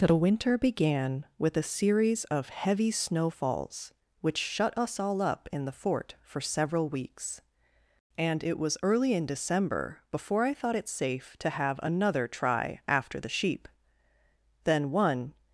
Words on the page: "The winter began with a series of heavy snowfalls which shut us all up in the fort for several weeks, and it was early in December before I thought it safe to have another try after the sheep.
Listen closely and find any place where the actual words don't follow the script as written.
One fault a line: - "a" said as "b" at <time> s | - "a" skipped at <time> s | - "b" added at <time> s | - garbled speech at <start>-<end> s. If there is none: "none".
- "Then one" added at 14.6 s